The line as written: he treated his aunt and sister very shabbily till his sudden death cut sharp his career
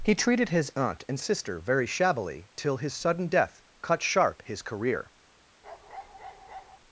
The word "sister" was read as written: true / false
true